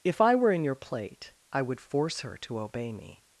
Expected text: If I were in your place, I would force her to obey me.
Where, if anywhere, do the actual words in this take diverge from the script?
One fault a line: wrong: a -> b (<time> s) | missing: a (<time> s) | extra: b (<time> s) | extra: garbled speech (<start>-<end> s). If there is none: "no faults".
wrong: place -> plate (0.7 s)